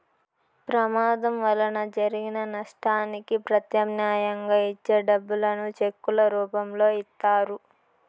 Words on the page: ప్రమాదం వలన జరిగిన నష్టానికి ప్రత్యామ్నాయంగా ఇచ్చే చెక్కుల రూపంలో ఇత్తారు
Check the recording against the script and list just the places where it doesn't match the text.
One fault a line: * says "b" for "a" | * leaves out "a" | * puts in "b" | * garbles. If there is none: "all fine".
* puts in "డబ్బులను"